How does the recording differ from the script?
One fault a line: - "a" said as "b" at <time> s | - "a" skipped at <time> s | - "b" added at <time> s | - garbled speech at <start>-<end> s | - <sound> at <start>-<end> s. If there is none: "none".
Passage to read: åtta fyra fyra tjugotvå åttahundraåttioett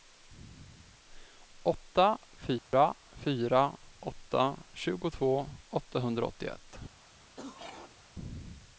- dropout at 2.6-2.7 s
- "åtta" added at 4.0 s
- throat clearing at 7.4-8.0 s